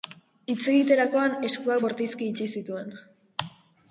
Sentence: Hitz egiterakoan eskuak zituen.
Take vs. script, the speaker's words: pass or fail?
fail